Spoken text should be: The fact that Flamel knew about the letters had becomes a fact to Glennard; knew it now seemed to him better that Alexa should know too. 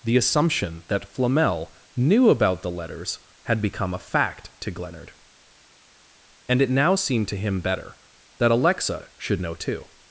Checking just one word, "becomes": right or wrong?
wrong